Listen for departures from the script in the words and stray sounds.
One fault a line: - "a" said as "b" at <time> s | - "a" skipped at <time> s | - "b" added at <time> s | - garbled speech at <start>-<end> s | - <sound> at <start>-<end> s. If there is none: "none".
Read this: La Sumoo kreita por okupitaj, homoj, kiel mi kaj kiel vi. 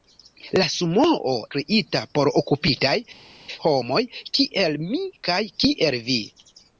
none